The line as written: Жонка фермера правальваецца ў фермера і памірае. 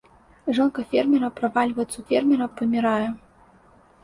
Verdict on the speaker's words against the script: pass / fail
pass